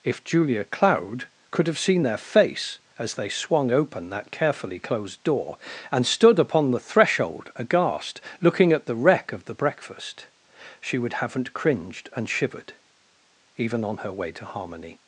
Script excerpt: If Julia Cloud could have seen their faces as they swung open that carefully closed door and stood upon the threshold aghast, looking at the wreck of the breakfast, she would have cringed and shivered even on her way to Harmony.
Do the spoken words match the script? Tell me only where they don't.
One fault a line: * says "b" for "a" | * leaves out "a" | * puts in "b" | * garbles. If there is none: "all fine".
* says "face" for "faces"
* says "haven't" for "have"